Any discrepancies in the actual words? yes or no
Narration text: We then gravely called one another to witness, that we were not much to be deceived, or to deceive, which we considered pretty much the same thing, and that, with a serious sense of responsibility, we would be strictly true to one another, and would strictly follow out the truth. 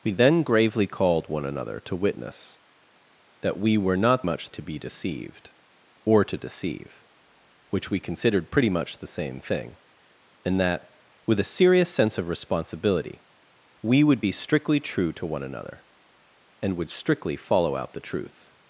no